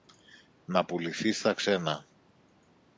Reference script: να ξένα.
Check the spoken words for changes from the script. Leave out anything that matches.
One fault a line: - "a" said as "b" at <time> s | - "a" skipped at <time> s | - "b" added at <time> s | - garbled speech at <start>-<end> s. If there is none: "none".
- "πουληθεί στα" added at 0.8 s